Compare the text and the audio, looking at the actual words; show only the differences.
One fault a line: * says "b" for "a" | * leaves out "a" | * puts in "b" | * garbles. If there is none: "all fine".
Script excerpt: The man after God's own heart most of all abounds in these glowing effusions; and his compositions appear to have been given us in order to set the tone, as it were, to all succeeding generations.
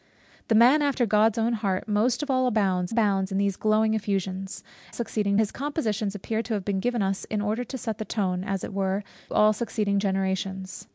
* puts in "abounds"
* says "succeeding" for "and"
* leaves out "to"